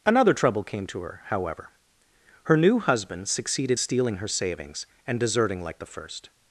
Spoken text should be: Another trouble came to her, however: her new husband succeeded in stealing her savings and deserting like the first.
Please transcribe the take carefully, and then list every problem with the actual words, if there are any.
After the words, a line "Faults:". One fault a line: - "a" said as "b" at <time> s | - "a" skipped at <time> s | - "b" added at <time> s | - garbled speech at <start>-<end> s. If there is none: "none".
Another trouble came to her, however: her new husband succeeded stealing her savings and deserting like the first.
Faults:
- "in" skipped at 3.8 s